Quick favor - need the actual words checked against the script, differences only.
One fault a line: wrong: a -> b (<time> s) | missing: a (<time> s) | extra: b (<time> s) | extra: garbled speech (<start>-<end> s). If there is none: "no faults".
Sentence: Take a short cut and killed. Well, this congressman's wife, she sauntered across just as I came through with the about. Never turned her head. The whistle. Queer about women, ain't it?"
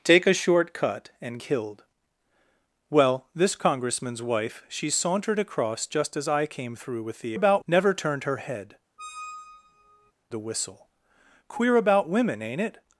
no faults